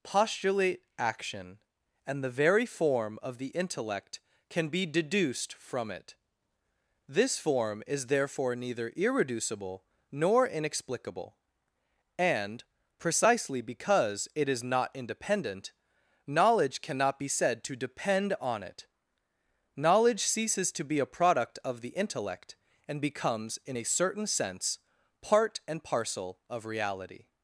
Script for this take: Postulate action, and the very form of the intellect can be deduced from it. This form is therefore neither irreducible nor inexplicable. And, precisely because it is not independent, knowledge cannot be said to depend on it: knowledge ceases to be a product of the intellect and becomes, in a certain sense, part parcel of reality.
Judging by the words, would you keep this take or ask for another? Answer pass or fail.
fail